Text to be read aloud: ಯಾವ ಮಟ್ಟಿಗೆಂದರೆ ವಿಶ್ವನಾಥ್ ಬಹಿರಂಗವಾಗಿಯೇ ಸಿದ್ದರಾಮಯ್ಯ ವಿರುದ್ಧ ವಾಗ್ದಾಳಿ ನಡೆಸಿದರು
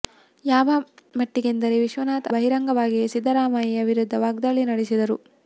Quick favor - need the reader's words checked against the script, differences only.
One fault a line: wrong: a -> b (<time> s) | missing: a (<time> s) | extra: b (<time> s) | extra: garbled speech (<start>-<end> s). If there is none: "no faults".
no faults